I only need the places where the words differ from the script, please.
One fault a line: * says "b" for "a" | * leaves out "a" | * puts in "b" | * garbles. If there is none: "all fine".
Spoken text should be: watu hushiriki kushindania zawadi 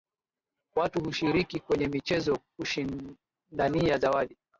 * puts in "kwenye michezo"